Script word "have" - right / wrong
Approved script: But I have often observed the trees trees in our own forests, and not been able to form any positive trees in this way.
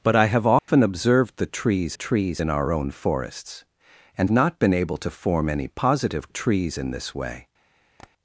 right